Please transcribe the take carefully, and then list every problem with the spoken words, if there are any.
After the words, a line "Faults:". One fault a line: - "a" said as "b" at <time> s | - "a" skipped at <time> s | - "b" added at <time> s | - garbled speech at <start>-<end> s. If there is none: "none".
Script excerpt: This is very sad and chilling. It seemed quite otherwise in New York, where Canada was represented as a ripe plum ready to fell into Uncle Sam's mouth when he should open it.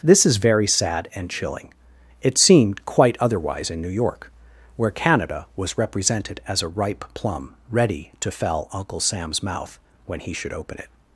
This is very sad and chilling. It seemed quite otherwise in New York, where Canada was represented as a ripe plum ready to fell Uncle Sam's mouth when he should open it.
Faults:
- "into" skipped at 8.7 s